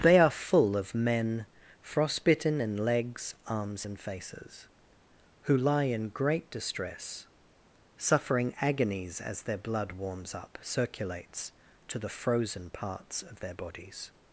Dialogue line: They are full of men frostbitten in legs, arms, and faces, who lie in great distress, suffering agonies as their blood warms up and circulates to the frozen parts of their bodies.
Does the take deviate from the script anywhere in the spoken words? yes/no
yes